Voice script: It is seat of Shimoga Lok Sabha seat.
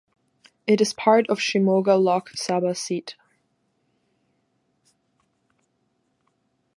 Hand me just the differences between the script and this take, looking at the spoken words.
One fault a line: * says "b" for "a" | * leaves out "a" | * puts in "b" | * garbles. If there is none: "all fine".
* says "part" for "seat"